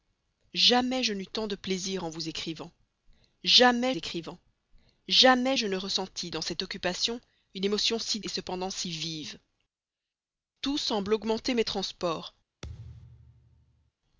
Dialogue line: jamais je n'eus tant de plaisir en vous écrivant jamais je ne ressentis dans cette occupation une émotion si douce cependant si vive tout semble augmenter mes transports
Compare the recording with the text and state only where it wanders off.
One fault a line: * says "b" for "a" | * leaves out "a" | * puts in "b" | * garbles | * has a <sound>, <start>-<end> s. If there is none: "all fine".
* puts in "écrivant jamais"
* leaves out "douce"
* has a thud, 12.6-13.9 s